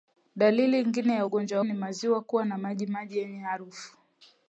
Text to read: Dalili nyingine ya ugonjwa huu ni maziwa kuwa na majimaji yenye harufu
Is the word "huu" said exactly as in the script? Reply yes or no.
no